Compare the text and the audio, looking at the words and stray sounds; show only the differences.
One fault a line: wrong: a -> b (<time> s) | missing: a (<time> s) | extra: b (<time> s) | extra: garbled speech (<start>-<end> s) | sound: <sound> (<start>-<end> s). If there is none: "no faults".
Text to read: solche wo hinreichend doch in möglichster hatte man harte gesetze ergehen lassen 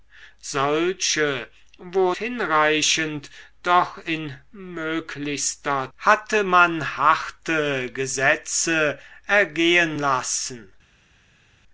no faults